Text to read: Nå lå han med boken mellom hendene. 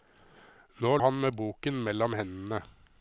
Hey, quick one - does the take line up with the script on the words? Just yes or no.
no